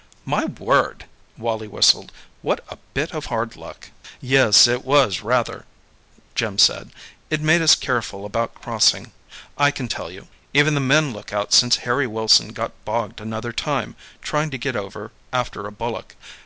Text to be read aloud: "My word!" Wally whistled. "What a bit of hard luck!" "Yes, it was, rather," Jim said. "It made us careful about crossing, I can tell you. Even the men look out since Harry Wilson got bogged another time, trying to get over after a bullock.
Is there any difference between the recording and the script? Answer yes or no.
no